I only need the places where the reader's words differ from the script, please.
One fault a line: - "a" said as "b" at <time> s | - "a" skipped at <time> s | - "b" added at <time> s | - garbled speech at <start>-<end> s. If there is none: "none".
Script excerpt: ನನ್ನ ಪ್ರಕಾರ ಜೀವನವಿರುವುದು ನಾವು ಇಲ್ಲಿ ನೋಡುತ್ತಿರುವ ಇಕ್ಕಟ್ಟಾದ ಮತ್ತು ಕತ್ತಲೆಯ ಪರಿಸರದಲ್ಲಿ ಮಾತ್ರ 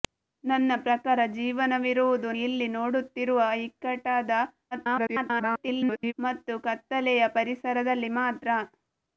- "ನಾವು" skipped at 2.3 s
- garbled speech at 4.7-6.1 s